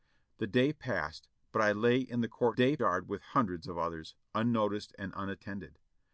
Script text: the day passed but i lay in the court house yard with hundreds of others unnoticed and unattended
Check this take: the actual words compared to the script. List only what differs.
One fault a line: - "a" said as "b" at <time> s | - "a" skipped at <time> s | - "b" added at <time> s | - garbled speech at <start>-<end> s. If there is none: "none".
- "house" said as "day" at 2.5 s